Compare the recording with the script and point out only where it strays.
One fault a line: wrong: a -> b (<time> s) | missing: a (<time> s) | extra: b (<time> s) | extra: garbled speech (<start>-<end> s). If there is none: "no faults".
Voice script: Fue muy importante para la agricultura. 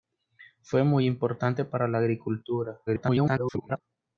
extra: garbled speech (2.9-3.8 s)